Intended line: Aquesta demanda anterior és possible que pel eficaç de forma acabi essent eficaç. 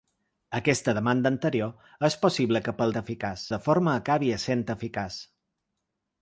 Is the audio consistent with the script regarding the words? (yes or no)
yes